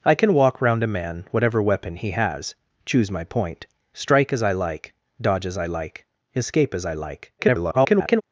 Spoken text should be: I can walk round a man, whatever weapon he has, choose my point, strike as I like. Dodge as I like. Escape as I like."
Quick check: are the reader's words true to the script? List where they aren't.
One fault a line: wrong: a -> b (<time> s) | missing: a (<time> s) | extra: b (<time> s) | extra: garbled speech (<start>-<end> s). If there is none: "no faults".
extra: garbled speech (7.4-8.2 s)